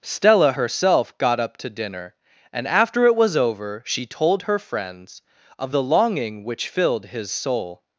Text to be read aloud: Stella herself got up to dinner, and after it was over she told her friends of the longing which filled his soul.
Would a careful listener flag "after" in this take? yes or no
no